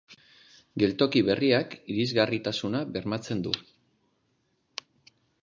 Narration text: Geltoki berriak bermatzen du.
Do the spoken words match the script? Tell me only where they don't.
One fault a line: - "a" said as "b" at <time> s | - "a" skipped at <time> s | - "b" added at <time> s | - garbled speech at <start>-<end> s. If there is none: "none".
- "irisgarritasuna" added at 1.9 s